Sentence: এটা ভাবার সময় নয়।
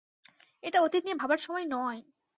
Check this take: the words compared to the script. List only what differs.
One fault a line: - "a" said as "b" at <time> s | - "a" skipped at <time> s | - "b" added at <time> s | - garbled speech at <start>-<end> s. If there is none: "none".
- "অতীত নিয়ে" added at 0.8 s